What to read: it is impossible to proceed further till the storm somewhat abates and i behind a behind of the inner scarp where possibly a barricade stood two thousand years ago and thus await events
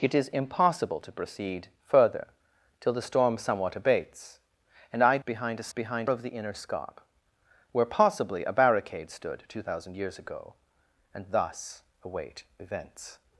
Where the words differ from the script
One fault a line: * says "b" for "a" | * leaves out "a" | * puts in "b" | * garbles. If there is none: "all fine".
all fine